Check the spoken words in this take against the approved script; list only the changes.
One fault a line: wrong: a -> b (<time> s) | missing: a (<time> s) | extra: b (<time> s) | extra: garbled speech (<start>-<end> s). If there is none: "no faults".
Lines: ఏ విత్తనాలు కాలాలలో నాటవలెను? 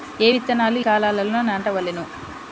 no faults